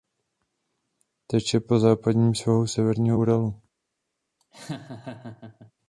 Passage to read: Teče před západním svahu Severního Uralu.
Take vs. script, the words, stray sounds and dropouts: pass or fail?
fail